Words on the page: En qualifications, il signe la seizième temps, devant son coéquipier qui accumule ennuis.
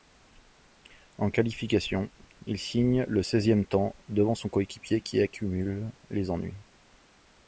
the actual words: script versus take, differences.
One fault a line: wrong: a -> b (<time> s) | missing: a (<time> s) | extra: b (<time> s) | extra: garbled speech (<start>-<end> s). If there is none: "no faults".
wrong: la -> le (3.1 s)
extra: les (6.1 s)